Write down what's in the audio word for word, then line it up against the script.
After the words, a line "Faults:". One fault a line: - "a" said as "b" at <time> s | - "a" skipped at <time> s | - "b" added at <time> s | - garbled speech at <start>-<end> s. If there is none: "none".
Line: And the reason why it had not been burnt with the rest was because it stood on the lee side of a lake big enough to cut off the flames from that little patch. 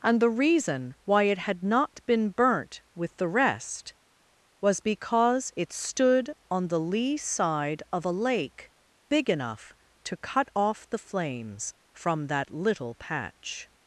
And the reason why it had not been burnt with the rest was because it stood on the lee side of a lake big enough to cut off the flames from that little patch.
Faults:
none